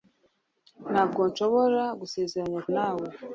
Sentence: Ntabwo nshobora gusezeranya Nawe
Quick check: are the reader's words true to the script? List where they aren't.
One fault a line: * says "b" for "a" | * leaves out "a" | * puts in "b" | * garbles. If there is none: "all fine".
all fine